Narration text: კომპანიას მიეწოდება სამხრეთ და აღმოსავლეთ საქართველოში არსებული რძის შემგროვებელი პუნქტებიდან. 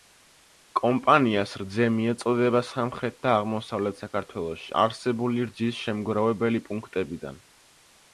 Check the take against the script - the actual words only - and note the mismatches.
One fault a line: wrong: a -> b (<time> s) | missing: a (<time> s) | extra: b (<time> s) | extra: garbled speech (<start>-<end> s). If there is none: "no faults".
extra: რძე (1.6 s)